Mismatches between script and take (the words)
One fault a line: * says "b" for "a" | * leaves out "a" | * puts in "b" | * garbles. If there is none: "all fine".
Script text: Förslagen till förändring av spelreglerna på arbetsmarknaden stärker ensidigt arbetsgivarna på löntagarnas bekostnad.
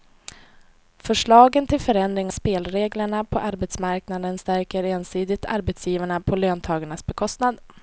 * leaves out "av"